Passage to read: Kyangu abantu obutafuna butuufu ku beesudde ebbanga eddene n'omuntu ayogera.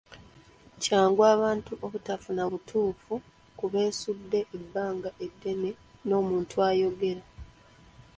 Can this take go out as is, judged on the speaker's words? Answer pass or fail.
pass